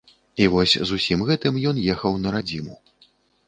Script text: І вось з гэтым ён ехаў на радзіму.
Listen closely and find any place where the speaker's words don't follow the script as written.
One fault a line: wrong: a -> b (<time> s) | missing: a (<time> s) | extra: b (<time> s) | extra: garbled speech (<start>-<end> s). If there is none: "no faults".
extra: усім (1.0 s)